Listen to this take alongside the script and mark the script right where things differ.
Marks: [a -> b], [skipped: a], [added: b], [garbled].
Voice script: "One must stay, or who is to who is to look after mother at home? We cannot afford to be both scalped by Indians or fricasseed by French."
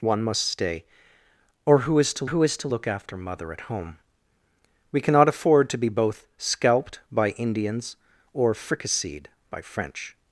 "One must stay, or who is to who is to look after mother at home? We cannot afford to be both scalped by Indians or fricasseed by French."